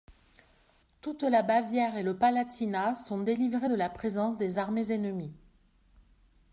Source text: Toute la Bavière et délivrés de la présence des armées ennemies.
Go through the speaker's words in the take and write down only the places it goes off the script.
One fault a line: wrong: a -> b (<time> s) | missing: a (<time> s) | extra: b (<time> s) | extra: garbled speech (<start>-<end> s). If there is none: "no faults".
extra: le Palatinat sont (2.0 s)